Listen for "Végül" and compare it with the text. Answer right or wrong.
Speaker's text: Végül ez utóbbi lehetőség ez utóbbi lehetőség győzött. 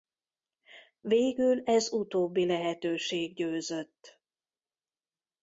right